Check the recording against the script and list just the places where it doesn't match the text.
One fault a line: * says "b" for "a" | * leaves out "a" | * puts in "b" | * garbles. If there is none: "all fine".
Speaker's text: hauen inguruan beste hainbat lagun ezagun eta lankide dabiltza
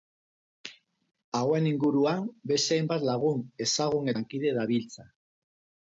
* leaves out "eta"